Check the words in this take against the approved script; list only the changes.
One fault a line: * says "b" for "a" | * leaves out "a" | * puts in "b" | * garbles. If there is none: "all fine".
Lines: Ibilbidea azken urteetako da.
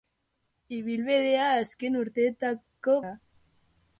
all fine